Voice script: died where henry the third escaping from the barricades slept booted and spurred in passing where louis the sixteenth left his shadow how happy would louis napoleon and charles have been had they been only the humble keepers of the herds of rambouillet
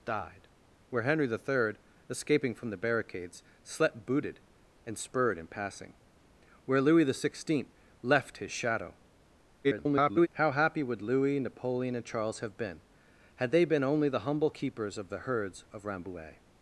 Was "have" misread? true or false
false